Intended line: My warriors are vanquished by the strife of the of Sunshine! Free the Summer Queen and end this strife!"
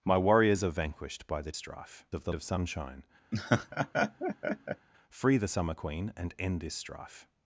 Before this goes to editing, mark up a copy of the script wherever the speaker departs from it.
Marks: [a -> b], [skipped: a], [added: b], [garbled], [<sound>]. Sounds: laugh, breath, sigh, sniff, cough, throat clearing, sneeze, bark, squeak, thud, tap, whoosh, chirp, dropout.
My warriors are vanquished by the strife of the of Sunshine! [laugh] Free the Summer Queen and end this strife!"